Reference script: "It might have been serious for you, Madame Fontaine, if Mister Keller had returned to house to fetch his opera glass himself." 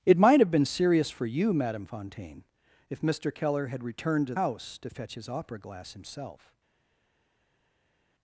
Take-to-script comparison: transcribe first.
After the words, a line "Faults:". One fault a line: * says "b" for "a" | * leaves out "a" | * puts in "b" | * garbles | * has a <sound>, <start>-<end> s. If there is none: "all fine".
"It might have been serious for you, Madame Fontaine, if Mister Keller had returned to house to fetch his opera glass himself."
Faults:
all fine